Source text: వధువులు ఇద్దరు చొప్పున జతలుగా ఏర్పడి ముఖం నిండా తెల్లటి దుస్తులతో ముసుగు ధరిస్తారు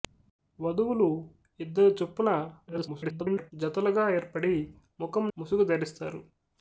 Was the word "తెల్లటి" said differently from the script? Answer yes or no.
yes